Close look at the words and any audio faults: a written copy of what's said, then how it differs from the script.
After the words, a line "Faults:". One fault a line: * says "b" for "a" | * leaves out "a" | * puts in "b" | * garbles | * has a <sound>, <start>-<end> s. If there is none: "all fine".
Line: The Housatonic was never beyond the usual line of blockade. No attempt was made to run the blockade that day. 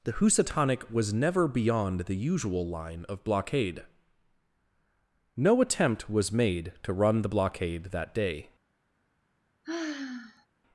The Housatonic was never beyond the usual line of blockade. No attempt was made to run the blockade that day.
Faults:
* has a sigh, 9.6-10.5 s